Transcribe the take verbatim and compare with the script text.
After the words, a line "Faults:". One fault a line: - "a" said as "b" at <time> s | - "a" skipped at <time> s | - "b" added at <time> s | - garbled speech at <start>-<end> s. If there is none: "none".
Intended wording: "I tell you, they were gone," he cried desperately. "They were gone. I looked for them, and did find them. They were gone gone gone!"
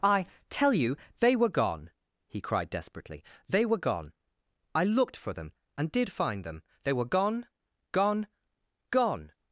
"I tell you, they were gone," he cried desperately. "They were gone. I looked for them, and did find them. They were gone gone gone!"
Faults:
none